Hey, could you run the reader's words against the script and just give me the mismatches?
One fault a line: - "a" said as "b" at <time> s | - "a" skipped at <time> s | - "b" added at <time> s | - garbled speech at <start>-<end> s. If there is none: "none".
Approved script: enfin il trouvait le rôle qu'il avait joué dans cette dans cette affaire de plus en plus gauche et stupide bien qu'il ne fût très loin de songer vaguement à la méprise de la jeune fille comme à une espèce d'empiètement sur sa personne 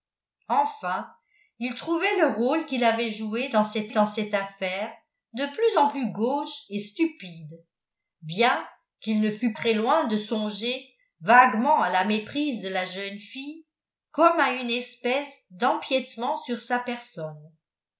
none